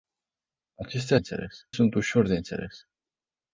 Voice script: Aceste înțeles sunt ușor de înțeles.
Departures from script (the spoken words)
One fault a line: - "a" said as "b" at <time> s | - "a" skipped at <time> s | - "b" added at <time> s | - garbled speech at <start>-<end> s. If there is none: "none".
none